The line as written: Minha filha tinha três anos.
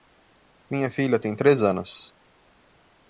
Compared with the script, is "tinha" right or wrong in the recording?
wrong